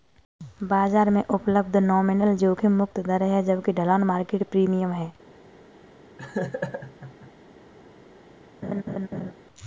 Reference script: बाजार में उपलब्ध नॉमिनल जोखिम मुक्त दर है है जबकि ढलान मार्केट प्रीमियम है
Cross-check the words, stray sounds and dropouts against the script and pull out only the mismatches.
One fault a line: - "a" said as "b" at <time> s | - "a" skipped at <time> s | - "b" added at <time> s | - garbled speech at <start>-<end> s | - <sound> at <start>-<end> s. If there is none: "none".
- "है" skipped at 3.4 s
- laugh at 6.2-7.3 s
- laugh at 8.6-9.3 s